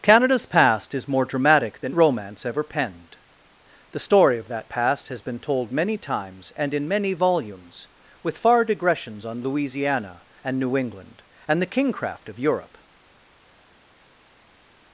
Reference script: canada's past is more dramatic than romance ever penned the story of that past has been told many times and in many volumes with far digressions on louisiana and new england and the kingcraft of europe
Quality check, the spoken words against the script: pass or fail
pass